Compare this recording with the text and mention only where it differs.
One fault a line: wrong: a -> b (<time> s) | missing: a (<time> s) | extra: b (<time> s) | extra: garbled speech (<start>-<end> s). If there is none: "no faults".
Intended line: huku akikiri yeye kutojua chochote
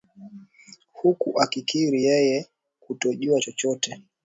no faults